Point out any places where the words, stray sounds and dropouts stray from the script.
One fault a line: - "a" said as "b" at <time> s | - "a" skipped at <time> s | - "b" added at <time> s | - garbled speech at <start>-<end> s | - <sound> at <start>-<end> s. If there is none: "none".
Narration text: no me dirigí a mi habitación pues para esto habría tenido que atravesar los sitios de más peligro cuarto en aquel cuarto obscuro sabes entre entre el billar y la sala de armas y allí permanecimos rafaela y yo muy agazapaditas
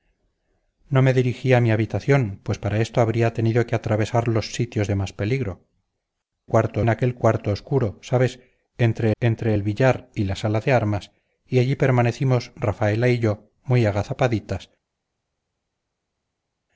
none